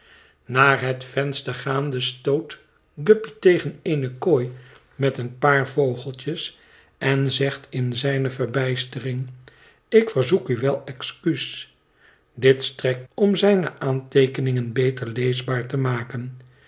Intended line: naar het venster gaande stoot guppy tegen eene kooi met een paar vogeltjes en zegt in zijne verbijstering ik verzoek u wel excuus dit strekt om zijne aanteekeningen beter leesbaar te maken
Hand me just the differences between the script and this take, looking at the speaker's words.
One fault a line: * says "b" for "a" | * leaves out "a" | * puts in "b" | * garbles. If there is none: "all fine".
all fine